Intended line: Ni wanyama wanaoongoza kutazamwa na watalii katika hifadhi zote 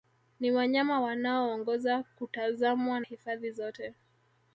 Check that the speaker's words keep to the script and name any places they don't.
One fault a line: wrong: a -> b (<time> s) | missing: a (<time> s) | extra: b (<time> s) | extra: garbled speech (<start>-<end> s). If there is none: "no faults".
missing: na watalii katika (3.0 s)